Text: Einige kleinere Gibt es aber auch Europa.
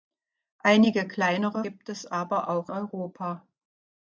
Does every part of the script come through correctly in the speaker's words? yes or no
yes